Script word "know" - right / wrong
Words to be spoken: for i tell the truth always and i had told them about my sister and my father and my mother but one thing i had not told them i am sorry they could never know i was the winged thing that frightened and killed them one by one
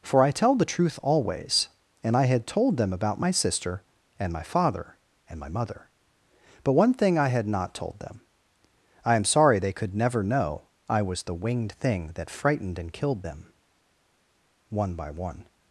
right